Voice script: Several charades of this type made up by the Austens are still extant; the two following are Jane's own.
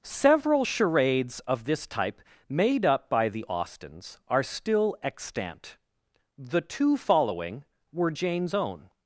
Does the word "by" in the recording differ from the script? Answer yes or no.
no